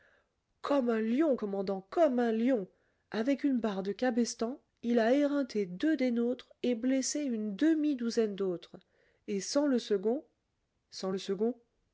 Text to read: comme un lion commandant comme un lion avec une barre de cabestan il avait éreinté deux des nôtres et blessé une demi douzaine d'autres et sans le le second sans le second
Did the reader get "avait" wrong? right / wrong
wrong